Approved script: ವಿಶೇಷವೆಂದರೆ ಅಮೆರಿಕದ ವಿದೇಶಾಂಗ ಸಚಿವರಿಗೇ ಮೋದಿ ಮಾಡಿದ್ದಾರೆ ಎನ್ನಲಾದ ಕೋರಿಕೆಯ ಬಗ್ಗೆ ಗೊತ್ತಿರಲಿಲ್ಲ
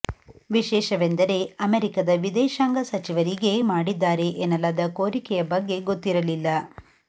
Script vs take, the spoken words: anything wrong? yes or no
yes